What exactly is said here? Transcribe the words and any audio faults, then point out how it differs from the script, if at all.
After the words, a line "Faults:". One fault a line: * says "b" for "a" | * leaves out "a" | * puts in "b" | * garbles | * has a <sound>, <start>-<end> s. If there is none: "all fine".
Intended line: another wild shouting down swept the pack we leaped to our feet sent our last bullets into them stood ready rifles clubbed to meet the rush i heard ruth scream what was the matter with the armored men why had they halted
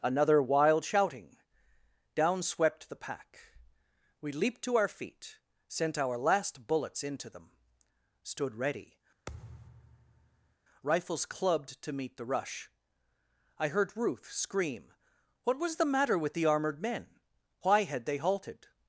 another wild shouting down swept the pack we leaped to our feet sent our last bullets into them stood ready rifles clubbed to meet the rush i heard ruth scream what was the matter with the armored men why had they halted
Faults:
* has a thud, 9.3-10.6 s